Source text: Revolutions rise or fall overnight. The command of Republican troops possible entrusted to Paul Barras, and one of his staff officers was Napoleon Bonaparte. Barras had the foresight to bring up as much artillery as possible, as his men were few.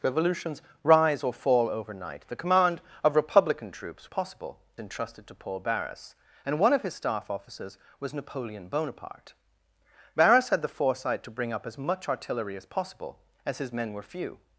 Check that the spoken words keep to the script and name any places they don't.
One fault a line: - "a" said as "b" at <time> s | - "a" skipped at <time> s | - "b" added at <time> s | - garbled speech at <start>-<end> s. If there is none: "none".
none